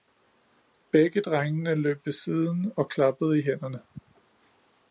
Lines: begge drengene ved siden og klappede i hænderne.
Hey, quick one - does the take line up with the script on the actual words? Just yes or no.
no